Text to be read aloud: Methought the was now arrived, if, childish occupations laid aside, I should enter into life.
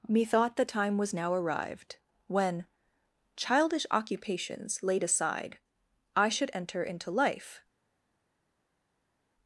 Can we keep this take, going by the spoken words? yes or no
no